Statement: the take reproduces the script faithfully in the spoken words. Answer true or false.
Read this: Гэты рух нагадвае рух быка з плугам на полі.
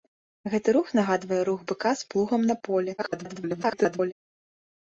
false